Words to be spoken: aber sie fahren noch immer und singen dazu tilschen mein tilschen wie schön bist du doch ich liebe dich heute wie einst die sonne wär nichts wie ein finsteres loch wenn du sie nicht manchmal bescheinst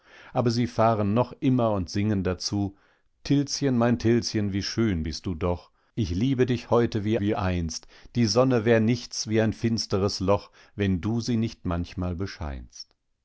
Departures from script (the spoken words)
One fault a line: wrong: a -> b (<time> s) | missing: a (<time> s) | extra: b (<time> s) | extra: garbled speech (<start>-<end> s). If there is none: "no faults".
extra: wie (7.2 s)